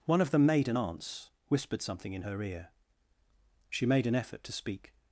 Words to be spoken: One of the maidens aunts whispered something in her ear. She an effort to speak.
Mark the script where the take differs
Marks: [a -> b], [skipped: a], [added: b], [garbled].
One of the [maidens -> maiden] aunts whispered something in her ear. She [added: made] an effort to speak.